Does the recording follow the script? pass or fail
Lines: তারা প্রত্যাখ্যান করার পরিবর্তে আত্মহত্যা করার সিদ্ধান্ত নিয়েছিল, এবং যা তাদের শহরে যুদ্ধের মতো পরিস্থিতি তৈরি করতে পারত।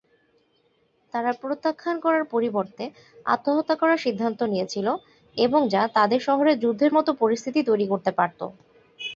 pass